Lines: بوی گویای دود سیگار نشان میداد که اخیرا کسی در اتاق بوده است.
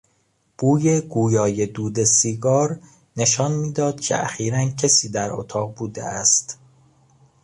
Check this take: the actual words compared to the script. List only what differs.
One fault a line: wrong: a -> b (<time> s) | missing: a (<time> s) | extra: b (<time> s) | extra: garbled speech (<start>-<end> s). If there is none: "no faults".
no faults